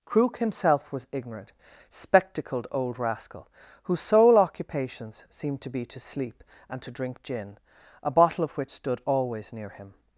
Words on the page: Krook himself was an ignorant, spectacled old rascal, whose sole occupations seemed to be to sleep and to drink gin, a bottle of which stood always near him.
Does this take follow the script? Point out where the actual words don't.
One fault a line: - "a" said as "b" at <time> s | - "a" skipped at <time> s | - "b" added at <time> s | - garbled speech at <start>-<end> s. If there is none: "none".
- "an" skipped at 1.1 s